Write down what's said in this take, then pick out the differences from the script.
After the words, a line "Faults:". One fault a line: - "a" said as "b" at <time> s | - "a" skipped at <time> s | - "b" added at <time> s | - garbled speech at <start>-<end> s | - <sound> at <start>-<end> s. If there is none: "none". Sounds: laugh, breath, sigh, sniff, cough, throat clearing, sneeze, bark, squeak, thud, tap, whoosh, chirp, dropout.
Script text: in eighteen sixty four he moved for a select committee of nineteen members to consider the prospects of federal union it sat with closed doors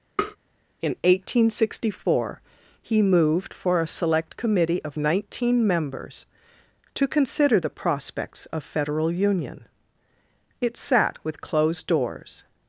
in eighteen sixty four he moved for a select committee of nineteen members to consider the prospects of federal union it sat with closed doors
Faults:
- tap at 0.2-0.4 s